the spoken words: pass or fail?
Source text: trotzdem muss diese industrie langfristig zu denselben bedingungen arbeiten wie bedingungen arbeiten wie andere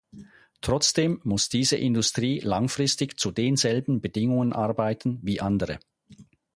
fail